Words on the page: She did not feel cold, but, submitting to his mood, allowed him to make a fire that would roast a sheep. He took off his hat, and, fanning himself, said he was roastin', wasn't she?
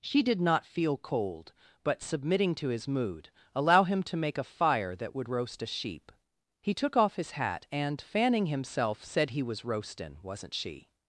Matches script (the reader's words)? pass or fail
fail